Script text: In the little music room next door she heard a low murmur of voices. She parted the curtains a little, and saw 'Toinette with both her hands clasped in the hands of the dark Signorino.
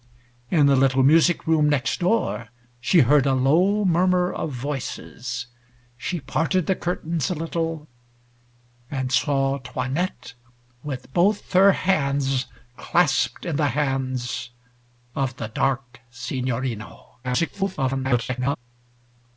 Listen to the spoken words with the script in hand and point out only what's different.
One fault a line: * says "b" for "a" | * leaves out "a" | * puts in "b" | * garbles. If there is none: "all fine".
* garbles